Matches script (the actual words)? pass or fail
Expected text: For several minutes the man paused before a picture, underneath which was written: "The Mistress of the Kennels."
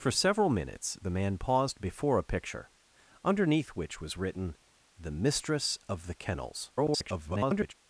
fail